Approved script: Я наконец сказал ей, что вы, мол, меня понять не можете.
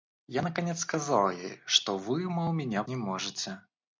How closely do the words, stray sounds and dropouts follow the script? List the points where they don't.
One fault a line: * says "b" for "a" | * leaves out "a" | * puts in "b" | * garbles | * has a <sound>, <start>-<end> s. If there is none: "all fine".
* leaves out "понять"